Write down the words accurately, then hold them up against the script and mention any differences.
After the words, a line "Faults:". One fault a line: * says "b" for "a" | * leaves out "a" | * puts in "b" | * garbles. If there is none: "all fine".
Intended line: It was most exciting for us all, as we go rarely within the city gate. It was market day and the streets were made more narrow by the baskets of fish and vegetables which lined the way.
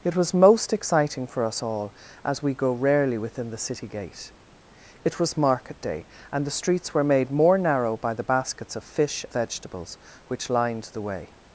It was most exciting for us all, as we go rarely within the city gate. It was market day and the streets were made more narrow by the baskets of fish vegetables which lined the way.
Faults:
* leaves out "and"